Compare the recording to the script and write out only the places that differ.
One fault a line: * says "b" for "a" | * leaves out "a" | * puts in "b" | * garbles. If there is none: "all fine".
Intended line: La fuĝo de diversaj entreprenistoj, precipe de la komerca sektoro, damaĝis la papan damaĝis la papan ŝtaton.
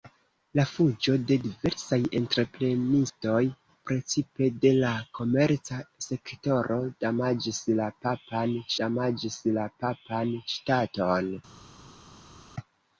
all fine